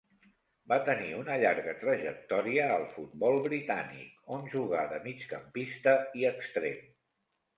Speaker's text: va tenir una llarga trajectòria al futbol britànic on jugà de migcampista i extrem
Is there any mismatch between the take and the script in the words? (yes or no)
no